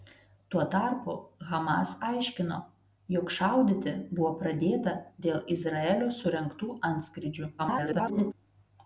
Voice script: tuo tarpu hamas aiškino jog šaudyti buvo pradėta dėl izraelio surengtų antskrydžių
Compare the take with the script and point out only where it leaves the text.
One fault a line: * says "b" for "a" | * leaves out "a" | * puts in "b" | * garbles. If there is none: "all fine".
* garbles